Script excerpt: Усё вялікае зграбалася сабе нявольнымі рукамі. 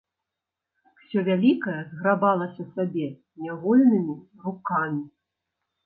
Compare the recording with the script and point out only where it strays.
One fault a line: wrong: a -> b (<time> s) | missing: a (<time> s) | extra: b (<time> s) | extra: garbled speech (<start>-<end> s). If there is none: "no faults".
no faults